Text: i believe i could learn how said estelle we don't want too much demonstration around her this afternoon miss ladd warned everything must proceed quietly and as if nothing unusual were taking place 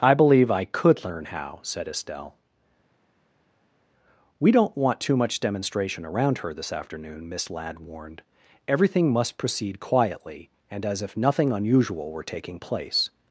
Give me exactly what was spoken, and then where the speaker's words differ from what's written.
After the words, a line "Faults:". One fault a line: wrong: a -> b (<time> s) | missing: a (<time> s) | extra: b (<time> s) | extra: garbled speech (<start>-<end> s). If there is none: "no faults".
i believe i could learn how said estelle we don't want too much demonstration around her this afternoon miss ladd warned everything must proceed quietly and as if nothing unusual were taking place
Faults:
no faults